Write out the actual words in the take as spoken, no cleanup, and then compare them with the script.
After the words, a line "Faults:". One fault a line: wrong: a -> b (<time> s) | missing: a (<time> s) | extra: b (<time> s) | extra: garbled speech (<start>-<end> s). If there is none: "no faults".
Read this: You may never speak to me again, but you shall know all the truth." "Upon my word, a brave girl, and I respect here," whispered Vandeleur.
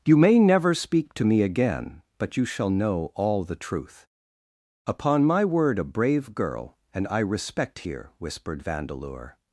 You may never speak to me again, but you shall know all the truth." "Upon my word, a brave girl, and I respect here," whispered Vandeleur.
Faults:
no faults